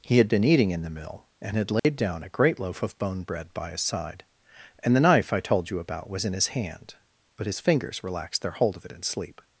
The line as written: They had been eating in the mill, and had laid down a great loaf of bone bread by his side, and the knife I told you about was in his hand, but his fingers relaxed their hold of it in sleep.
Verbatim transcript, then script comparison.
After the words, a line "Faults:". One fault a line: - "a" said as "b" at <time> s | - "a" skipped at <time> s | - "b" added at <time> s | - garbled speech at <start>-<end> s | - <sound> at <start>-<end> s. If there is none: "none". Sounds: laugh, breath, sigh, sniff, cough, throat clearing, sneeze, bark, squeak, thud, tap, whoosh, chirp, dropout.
He had been eating in the mill, and had laid down a great loaf of bone bread by his side, and the knife I told you about was in his hand, but his fingers relaxed their hold of it in sleep.
Faults:
- "They" said as "He" at 0.0 s
- dropout at 1.8-1.8 s